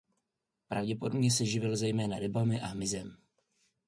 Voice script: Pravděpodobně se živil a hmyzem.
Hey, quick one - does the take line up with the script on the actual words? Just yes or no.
no